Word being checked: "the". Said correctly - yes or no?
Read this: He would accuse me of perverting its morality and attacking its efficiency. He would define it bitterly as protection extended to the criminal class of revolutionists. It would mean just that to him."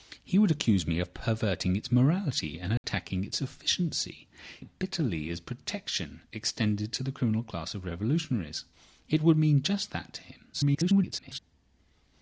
yes